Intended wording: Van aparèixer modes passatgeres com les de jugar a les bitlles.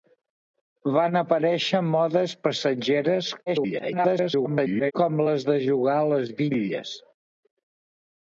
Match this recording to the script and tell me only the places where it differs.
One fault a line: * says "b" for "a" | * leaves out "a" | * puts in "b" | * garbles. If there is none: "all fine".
* garbles